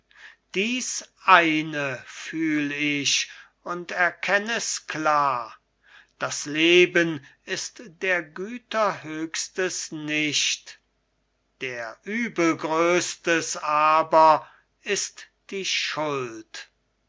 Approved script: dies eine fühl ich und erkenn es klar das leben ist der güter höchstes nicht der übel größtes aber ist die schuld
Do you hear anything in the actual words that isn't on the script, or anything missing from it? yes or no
no